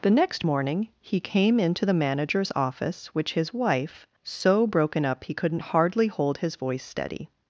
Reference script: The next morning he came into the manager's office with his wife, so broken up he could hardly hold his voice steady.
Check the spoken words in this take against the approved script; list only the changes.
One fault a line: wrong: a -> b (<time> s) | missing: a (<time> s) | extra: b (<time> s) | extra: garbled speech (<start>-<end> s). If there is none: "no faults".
wrong: with -> which (3.1 s)
wrong: could -> couldn't (5.3 s)